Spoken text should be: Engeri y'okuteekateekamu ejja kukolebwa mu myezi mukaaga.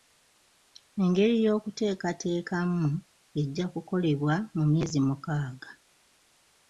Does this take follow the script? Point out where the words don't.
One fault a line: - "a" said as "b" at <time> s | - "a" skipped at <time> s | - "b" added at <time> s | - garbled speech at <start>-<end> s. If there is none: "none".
none